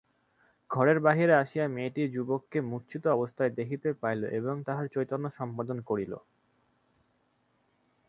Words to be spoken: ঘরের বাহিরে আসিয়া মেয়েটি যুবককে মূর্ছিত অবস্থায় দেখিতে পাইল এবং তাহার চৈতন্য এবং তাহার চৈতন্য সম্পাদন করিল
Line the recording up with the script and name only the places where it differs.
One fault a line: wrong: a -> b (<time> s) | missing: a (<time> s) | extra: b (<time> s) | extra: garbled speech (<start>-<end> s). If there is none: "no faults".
missing: এবং তাহার চৈতন্য (5.3 s)